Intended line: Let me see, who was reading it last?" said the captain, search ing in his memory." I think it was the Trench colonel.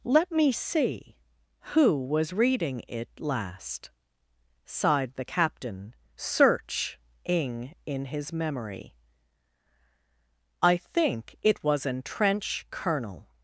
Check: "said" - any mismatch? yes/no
yes